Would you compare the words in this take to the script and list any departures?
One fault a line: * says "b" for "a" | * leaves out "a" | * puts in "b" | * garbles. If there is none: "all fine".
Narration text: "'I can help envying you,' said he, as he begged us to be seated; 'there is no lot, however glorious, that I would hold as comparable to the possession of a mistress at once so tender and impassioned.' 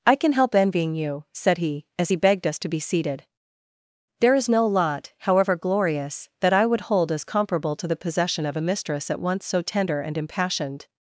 all fine